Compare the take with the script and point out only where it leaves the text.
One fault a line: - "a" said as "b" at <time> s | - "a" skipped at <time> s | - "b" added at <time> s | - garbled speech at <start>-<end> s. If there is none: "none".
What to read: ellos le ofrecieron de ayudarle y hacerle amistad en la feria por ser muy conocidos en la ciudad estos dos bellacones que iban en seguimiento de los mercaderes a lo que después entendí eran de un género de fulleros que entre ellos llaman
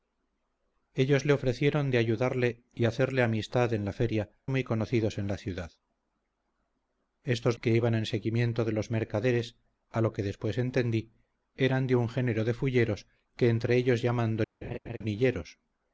- "por ser" skipped at 4.3 s
- "dos bellacones" skipped at 7.6 s